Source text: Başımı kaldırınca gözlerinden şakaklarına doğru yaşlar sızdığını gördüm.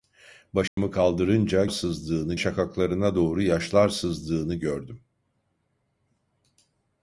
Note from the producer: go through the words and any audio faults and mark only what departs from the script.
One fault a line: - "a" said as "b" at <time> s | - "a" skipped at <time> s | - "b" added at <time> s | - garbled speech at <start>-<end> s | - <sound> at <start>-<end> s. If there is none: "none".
- dropout at 0.7-0.8 s
- "gözlerinden" said as "sızdığını" at 1.7 s